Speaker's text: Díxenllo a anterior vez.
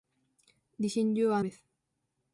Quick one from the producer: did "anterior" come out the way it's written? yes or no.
no